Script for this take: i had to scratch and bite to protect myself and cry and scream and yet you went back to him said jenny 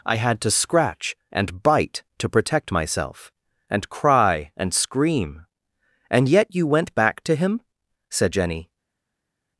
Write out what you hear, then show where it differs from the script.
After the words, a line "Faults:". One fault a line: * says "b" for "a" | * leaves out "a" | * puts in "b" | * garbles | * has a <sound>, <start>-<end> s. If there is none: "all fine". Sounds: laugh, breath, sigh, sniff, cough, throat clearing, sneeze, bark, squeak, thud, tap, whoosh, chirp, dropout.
i had to scratch and bite to protect myself and cry and scream and yet you went back to him said jenny
Faults:
all fine